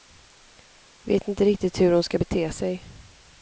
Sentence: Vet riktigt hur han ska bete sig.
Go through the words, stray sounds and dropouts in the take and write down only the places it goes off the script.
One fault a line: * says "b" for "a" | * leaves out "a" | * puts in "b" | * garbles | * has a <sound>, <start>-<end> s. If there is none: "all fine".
* puts in "inte"
* says "hon" for "han"